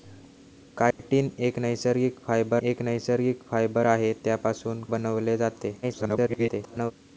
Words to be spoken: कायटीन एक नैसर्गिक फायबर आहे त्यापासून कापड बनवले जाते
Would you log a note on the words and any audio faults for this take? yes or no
yes